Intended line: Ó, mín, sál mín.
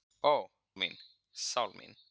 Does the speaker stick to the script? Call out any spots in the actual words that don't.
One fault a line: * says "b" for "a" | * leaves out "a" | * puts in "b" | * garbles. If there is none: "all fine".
all fine